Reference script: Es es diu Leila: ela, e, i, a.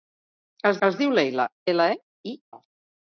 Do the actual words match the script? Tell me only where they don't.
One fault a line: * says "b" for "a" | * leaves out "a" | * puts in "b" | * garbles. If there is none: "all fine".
all fine